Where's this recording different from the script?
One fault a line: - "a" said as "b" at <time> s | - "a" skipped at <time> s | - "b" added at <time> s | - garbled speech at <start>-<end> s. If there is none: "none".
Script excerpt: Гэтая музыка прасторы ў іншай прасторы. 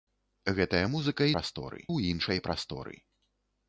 none